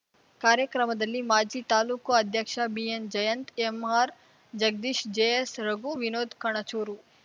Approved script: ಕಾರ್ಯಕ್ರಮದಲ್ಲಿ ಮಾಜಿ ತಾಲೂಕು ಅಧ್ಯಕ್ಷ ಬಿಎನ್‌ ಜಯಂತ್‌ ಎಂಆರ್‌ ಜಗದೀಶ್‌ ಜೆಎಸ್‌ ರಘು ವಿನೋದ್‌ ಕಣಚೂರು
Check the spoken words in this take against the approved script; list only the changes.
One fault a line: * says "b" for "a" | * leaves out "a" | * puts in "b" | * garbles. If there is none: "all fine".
all fine